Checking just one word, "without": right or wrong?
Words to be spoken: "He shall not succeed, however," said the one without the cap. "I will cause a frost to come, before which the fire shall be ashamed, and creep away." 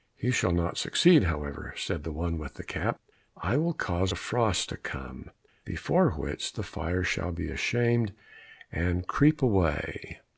wrong